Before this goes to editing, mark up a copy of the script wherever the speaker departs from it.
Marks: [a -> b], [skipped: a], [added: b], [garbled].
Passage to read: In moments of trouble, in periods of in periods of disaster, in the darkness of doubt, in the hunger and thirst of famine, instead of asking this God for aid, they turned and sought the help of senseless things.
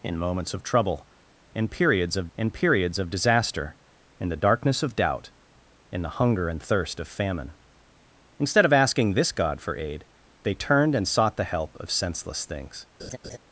In moments of trouble, in periods of in periods of disaster, in the darkness of doubt, in the hunger and thirst of famine, instead of asking this God for aid, they turned and sought the help of senseless things.